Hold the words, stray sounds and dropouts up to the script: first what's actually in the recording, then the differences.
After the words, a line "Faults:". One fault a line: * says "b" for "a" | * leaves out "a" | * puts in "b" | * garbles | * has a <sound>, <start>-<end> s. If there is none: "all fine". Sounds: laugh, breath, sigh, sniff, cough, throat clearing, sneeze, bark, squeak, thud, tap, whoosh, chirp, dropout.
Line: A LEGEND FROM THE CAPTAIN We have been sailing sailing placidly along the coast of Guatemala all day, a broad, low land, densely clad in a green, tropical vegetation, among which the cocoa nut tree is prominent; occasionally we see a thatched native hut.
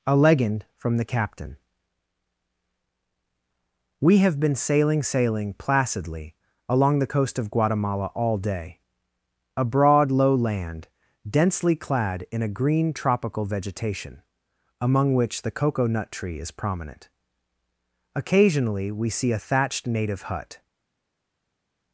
A LEGEND FROM THE CAPTAIN We have been sailing sailing placidly along the coast of Guatemala all day, a broad, low land, densely clad in a green, tropical vegetation, among which the cocoa nut tree is prominent; occasionally we see a thatched native hut.
Faults:
all fine